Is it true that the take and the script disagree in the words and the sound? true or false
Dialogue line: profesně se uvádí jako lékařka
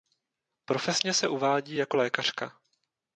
false